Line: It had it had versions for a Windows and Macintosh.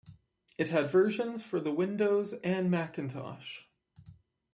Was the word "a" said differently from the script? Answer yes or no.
yes